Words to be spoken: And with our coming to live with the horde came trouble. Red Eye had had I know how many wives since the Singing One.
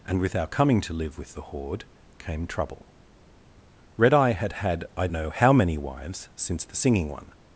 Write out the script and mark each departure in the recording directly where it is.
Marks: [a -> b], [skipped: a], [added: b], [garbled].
And with our coming to live with the horde came trouble. Red Eye had had I know how many wives since the Singing One.